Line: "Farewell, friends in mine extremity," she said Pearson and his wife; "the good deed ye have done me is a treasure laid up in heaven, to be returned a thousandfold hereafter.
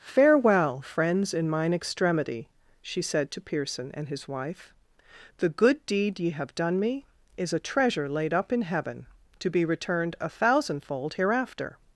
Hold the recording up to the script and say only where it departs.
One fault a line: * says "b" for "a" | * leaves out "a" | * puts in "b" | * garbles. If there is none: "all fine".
* puts in "to"